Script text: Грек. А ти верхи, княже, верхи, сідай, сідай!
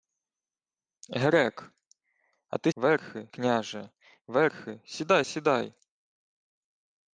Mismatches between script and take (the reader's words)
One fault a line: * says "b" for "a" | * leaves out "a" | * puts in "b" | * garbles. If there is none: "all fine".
all fine